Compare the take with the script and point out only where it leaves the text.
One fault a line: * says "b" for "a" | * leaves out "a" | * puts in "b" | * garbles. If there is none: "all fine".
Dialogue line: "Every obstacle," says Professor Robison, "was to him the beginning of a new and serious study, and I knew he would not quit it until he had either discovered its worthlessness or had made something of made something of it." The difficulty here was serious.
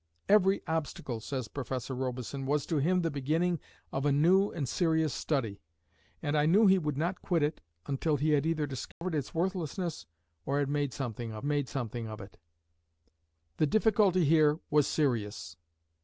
all fine